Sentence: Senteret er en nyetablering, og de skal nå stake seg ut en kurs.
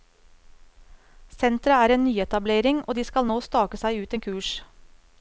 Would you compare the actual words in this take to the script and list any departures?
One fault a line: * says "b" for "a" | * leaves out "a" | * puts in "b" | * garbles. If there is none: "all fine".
all fine